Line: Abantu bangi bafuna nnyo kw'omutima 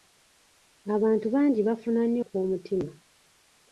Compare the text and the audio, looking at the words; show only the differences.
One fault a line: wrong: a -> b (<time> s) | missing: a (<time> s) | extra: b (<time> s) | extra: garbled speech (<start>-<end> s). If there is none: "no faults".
no faults